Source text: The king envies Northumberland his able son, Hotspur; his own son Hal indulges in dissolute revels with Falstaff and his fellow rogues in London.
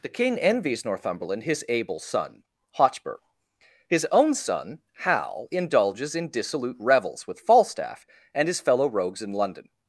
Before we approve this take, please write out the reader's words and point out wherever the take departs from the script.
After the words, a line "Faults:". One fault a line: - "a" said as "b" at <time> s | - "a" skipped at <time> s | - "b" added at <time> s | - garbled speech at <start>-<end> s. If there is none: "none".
The king envies Northumberland his able son, Hotspur; his own son Hal indulges in dissolute revels with Falstaff and his fellow rogues in London.
Faults:
none